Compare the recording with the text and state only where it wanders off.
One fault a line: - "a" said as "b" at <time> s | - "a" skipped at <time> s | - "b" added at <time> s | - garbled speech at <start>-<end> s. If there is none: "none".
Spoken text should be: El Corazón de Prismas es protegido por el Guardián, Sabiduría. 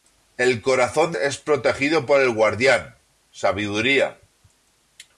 - "de Prismas" skipped at 1.1 s